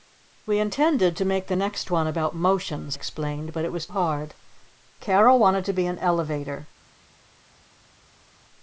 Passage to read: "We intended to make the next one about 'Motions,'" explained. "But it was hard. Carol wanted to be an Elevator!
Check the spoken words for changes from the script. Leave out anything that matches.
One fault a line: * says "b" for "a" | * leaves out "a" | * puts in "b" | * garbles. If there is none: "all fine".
all fine